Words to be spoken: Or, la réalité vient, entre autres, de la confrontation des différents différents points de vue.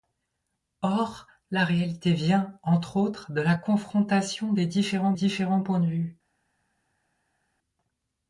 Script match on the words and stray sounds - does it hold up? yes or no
yes